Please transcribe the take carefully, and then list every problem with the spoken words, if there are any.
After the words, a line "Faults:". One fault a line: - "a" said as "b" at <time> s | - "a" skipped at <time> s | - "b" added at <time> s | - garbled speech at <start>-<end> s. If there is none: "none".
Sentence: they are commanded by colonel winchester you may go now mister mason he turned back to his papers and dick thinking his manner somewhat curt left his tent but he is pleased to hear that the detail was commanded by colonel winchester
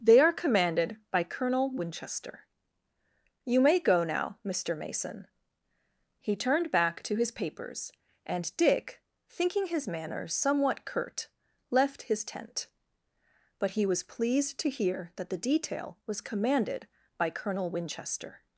they are commanded by colonel winchester you may go now mister mason he turned back to his papers and dick thinking his manner somewhat curt left his tent but he was pleased to hear that the detail was commanded by colonel winchester
Faults:
- "is" said as "was" at 13.8 s